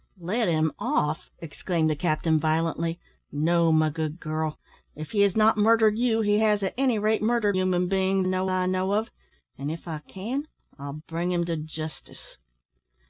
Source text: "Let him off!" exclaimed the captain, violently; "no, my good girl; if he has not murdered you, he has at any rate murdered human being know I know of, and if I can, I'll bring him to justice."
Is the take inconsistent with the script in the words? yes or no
no